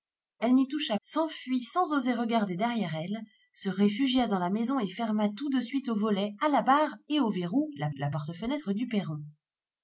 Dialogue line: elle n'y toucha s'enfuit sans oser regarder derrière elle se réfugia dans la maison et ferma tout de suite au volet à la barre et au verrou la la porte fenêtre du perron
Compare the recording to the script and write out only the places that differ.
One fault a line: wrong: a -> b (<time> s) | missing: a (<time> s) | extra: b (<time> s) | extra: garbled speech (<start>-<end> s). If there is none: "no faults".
no faults